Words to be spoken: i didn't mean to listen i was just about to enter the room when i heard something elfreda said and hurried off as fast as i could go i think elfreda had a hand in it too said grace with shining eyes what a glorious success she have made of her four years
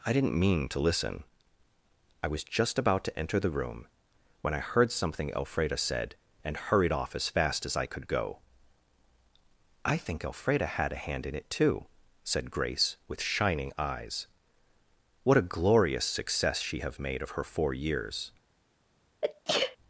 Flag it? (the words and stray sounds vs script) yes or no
yes